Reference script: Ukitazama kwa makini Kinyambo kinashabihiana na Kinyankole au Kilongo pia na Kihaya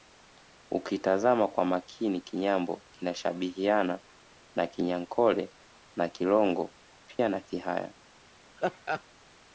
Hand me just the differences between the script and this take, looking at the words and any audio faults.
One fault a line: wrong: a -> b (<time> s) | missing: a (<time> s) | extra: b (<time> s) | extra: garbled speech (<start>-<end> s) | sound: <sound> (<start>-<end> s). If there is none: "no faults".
wrong: au -> na (6.0 s)
sound: dropout (7.2-7.2 s)
sound: laugh (8.6-9.0 s)